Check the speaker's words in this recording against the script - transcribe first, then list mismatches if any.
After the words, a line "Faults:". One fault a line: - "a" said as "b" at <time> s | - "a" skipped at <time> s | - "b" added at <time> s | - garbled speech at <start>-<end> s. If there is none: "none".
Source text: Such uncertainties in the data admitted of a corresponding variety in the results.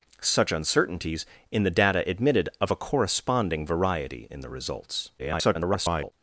Such uncertainties in the data admitted of a corresponding variety in the results. [garbled]
Faults:
- garbled speech at 5.2-6.1 s